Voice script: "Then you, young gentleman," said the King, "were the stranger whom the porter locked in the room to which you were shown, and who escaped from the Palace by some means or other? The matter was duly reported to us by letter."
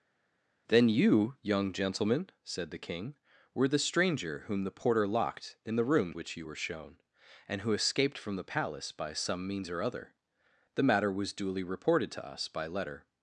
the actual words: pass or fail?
fail